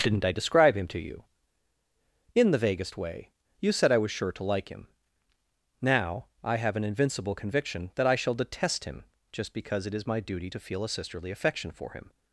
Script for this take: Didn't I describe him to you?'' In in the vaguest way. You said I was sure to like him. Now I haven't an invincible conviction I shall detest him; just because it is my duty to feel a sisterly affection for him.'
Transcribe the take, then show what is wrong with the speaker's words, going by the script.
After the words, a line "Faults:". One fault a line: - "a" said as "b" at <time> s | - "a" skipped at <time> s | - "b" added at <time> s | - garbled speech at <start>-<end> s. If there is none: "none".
Didn't I describe him to you?'' In the vaguest way. You said I was sure to like him. Now I have an invincible conviction that I shall detest him; just because it is my duty to feel a sisterly affection for him.'
Faults:
- "in" skipped at 2.5 s
- "haven't" said as "have" at 6.6 s
- "that" added at 8.0 s